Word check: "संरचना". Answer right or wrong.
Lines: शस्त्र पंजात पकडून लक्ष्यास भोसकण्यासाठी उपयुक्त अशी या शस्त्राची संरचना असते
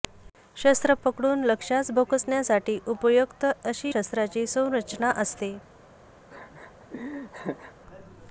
right